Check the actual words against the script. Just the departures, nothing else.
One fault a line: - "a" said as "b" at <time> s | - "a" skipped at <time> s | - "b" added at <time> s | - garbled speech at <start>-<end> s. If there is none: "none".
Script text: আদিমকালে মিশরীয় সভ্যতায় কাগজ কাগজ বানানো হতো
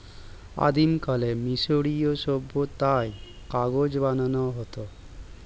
- "কাগজ" skipped at 3.9 s